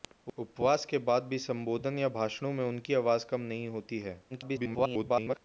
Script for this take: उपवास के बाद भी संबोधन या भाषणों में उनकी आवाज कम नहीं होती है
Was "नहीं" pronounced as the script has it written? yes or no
yes